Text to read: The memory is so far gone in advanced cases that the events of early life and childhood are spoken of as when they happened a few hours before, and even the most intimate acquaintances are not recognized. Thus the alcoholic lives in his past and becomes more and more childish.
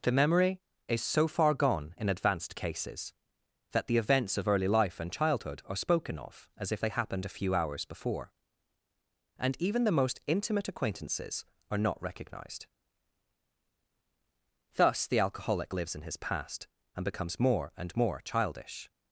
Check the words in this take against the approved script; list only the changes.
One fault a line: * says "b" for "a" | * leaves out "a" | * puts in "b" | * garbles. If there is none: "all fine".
* says "if" for "when"